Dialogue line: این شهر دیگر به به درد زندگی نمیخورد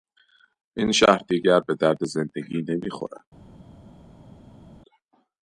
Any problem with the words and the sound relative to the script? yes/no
yes